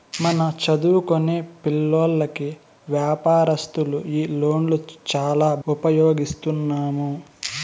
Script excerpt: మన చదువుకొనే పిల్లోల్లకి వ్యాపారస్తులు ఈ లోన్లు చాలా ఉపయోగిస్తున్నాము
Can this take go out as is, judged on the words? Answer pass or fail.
pass